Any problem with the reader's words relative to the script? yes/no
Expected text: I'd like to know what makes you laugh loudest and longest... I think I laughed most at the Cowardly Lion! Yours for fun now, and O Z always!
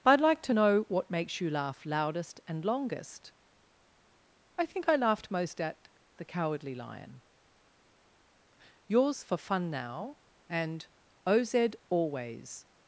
no